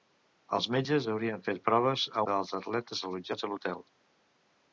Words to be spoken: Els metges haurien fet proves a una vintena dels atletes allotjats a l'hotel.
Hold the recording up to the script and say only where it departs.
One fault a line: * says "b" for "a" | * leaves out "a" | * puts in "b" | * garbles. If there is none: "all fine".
* leaves out "una vintena"